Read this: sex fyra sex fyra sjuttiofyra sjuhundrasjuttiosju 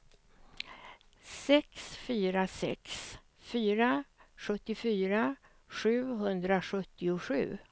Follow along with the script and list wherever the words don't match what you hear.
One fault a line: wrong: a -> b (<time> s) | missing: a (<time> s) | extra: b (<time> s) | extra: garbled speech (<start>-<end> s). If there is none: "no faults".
no faults